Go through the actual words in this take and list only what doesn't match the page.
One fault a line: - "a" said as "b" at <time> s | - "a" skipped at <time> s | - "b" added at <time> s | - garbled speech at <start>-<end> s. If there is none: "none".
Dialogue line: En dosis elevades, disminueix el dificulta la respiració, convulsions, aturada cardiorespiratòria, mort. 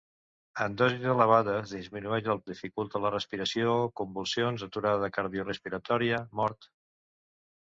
none